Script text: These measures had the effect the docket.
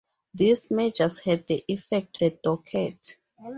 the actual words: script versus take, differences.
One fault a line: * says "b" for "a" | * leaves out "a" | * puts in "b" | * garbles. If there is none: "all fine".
all fine